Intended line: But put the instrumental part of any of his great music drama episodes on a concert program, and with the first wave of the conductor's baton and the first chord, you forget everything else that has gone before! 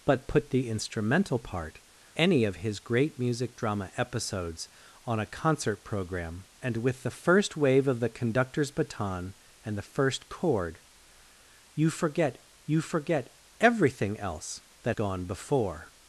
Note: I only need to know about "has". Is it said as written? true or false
false